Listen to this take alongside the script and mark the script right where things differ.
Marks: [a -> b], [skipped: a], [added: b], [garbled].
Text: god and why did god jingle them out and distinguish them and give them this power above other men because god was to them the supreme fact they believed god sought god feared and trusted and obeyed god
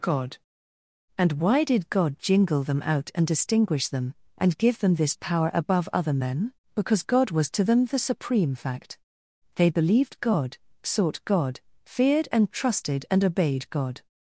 god and why did god jingle them out and distinguish them and give them this power above other men because god was to them the supreme fact they believed god sought god feared and trusted and obeyed god